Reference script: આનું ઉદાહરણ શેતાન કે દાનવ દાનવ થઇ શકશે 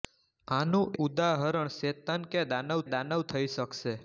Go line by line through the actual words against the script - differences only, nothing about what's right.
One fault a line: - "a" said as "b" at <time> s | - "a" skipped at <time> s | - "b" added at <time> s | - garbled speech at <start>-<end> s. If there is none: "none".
none